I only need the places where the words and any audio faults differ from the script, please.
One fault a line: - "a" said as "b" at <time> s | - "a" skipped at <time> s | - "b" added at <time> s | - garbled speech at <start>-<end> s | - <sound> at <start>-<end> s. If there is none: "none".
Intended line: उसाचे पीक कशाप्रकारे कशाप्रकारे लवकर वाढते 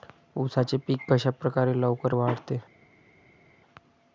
- "कशाप्रकारे" skipped at 1.7 s